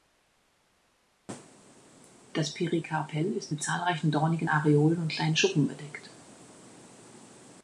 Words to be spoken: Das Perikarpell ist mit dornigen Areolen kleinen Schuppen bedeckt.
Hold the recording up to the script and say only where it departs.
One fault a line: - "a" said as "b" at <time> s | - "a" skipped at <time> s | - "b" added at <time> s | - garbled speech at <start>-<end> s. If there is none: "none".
- "zahlreichen" added at 3.6 s
- "und" added at 5.0 s